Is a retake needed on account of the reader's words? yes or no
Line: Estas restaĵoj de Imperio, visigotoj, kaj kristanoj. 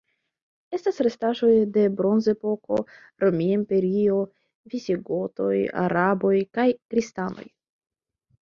yes